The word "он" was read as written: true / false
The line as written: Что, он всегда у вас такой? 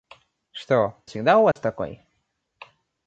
false